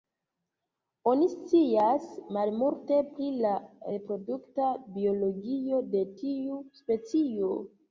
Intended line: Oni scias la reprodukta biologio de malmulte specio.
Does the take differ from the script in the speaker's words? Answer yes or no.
yes